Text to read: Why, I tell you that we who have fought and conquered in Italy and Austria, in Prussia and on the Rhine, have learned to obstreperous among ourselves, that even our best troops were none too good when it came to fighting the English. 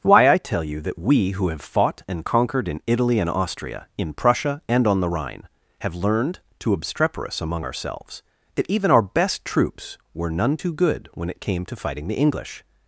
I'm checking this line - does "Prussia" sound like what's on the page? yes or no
yes